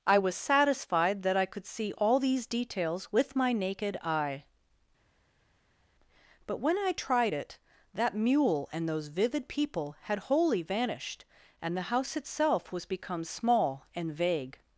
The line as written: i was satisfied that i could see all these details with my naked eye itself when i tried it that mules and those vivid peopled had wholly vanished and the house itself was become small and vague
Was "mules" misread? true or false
true